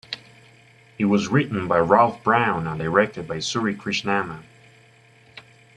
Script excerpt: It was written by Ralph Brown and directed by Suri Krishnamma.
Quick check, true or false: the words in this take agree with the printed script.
true